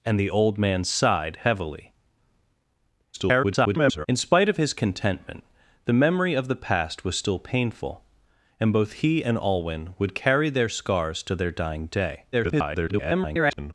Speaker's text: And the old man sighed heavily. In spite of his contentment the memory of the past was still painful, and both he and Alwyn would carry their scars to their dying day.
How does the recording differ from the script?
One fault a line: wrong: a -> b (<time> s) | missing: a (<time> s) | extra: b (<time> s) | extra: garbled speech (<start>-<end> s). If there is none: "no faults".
extra: garbled speech (3.1-4.1 s)
extra: garbled speech (12.3-13.7 s)